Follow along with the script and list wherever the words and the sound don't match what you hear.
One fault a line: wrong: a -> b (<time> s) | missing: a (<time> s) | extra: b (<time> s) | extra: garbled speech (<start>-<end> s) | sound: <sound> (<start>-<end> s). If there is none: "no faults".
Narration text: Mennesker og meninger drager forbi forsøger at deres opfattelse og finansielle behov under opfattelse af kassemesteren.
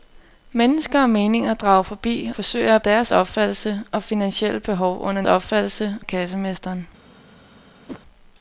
sound: whoosh (7.9-8.0 s)